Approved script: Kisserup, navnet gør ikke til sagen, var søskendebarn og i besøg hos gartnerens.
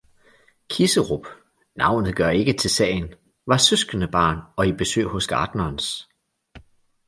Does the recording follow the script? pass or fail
pass